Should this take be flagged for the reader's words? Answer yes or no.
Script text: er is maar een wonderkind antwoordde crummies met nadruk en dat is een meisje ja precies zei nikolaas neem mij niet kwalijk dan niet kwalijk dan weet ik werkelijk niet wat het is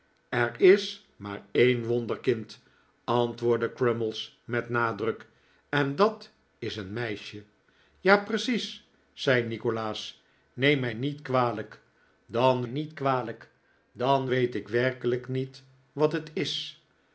no